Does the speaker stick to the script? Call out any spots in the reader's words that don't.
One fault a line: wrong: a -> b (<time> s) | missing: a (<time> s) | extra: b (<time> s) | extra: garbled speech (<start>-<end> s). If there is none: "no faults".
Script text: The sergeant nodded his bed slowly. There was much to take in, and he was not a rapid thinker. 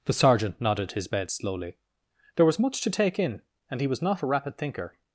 no faults